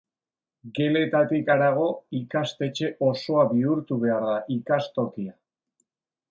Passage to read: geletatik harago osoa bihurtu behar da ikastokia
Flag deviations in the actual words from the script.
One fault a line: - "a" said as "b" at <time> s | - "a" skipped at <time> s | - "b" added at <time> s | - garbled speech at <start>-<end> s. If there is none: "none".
- "ikastetxe" added at 2.2 s